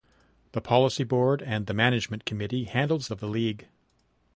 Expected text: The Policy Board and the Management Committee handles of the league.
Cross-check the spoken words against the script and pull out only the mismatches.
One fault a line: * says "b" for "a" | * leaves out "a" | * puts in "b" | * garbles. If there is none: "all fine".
all fine